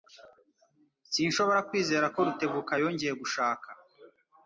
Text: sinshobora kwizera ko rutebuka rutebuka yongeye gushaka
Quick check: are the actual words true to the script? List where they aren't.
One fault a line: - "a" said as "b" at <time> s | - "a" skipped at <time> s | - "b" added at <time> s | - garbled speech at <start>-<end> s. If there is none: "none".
- "rutebuka" skipped at 2.7 s